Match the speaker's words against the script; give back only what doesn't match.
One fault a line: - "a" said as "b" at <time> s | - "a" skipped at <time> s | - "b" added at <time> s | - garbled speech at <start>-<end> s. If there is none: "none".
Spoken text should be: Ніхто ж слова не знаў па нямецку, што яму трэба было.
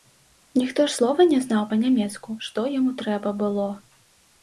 none